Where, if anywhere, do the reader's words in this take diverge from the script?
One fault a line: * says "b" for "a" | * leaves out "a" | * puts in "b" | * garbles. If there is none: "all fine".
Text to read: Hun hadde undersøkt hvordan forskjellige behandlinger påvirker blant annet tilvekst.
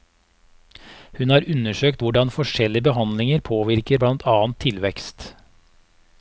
* says "har" for "hadde"